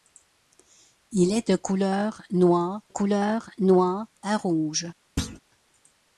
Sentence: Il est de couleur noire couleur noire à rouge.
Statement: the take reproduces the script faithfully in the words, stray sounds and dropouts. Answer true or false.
false